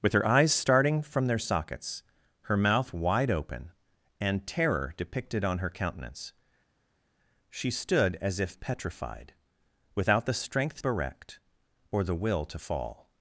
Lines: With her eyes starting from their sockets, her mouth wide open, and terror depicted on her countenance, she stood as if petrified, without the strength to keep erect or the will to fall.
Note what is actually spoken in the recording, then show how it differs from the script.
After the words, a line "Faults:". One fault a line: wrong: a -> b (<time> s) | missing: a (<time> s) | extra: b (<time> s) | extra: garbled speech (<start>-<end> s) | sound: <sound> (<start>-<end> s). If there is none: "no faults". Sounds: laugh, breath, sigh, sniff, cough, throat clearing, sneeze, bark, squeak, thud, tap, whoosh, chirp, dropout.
With her eyes starting from their sockets, her mouth wide open, and terror depicted on her countenance, she stood as if petrified, without the strength erect or the will to fall.
Faults:
missing: to keep (10.8 s)